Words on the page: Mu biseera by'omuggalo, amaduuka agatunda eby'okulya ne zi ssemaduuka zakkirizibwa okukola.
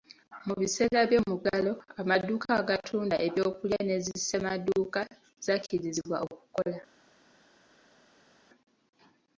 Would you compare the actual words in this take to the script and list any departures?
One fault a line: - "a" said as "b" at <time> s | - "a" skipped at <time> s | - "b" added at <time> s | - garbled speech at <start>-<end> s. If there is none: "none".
none